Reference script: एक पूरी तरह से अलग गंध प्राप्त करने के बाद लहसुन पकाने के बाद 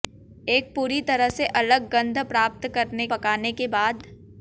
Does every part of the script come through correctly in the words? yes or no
no